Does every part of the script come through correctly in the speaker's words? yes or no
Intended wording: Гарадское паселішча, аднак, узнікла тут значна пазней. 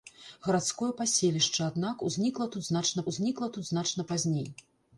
no